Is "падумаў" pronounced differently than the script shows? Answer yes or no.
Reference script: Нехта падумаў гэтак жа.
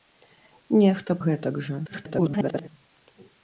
yes